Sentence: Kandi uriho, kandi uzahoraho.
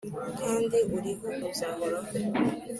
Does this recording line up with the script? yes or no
no